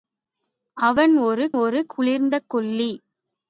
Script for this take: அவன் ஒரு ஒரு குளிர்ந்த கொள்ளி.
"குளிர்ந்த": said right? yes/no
yes